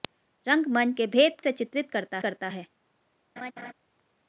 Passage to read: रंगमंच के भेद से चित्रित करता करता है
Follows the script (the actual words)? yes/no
yes